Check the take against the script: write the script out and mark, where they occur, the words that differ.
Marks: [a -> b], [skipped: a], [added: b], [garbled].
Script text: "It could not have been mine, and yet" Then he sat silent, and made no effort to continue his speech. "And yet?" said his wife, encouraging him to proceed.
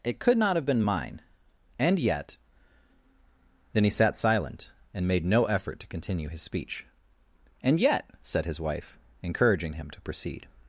"It could not have been mine, and yet" Then he sat silent, and made no effort to continue his speech. "And yet?" said his wife, encouraging him to proceed.